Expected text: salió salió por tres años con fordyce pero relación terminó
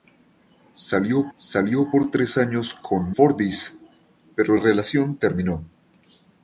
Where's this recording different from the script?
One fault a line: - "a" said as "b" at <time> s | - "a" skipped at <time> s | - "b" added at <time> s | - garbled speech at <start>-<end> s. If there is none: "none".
none